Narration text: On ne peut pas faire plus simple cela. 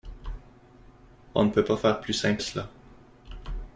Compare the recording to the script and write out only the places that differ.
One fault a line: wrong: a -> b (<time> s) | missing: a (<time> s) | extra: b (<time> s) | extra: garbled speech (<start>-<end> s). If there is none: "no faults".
no faults